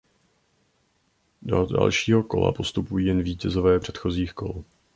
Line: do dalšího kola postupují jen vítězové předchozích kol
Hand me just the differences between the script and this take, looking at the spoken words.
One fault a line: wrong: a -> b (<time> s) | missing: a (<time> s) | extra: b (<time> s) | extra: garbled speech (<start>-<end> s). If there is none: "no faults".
no faults